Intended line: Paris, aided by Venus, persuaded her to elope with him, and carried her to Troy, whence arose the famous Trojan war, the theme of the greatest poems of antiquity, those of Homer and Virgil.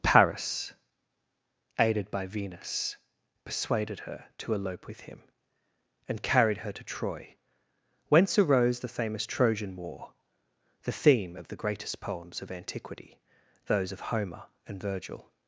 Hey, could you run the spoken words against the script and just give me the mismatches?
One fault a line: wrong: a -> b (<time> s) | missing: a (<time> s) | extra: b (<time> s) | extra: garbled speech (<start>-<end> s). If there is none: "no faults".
no faults